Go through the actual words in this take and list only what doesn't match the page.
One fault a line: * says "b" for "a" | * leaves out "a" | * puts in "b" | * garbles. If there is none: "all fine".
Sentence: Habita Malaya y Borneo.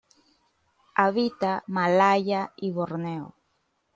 all fine